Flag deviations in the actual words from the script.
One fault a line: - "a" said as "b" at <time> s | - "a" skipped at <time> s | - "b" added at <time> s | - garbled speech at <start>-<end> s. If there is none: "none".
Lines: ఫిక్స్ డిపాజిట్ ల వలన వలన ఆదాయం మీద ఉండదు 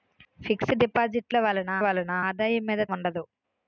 none